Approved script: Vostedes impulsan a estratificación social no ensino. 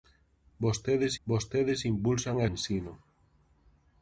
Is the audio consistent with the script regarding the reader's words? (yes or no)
no